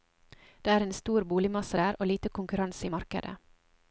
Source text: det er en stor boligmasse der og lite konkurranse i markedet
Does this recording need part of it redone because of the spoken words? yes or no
no